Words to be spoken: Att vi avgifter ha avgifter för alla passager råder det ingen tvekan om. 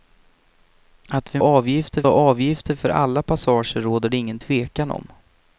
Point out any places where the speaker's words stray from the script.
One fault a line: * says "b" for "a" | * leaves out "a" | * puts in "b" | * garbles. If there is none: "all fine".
all fine